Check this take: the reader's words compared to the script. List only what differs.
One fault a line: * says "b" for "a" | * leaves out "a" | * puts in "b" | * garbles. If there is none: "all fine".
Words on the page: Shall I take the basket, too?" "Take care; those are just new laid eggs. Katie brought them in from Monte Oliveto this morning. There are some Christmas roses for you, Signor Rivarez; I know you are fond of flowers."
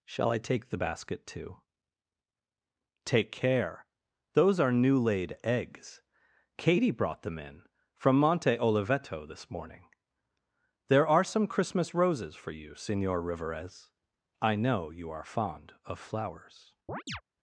* leaves out "just"